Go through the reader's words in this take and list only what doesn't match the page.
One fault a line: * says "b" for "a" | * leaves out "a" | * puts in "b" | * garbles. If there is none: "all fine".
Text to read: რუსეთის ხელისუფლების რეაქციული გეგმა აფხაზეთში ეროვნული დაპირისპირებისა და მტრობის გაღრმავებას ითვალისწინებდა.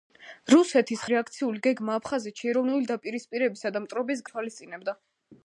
* leaves out "ხელისუფლების"
* leaves out "გაღრმავებას"